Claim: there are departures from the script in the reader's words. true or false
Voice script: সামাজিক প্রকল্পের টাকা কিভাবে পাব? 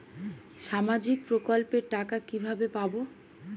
false